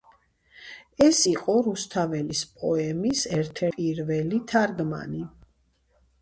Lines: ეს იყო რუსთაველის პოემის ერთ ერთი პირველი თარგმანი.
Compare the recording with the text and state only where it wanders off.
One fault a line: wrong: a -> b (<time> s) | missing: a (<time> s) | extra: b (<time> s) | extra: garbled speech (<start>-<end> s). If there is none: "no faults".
missing: ერთი (3.6 s)